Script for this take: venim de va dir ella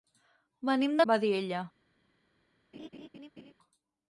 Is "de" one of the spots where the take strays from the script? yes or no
no